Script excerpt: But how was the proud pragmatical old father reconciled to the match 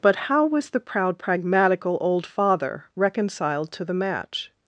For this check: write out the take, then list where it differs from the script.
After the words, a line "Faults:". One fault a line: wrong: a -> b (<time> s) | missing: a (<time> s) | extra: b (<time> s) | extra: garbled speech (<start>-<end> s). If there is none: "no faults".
But how was the proud pragmatical old father reconciled to the match
Faults:
no faults